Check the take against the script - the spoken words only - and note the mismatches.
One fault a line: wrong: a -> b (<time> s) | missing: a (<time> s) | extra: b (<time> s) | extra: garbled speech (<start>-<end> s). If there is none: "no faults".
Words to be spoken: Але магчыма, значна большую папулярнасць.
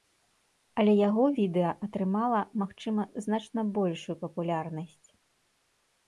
extra: яго відэа атрымала (1.1 s)